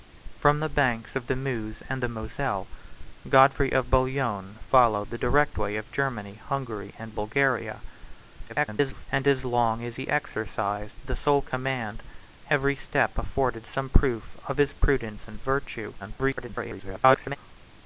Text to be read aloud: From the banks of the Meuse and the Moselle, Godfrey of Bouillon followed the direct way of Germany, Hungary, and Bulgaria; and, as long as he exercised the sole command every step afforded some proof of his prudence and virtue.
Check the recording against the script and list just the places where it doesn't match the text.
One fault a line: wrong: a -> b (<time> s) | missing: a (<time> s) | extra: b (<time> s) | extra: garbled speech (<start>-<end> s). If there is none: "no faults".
extra: garbled speech (8.5-9.1 s)
extra: garbled speech (16.0-17.4 s)